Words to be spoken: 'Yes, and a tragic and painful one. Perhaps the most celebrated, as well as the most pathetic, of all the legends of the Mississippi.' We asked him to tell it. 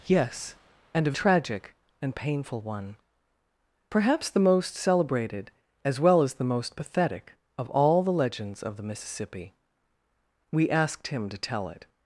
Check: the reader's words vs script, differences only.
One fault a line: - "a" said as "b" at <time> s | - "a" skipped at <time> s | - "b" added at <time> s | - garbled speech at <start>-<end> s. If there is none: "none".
none